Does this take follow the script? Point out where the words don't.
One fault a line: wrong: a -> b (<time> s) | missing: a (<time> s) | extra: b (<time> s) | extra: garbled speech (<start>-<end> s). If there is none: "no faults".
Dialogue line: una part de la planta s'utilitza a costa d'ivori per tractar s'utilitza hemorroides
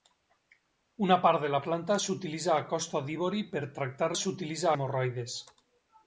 no faults